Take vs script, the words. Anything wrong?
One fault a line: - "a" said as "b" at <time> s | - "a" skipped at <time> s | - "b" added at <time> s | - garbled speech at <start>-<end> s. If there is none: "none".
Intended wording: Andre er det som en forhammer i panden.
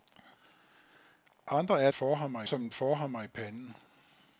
- "det" said as "forhammer" at 1.9 s